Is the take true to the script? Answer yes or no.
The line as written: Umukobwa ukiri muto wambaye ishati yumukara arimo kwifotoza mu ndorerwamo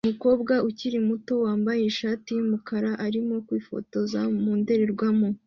yes